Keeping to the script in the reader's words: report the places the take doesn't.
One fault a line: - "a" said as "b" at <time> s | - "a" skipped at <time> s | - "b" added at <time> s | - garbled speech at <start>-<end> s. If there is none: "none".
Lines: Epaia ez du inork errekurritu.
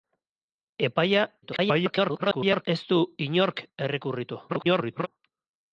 - garbled speech at 1.4-2.7 s
- garbled speech at 4.5-5.1 s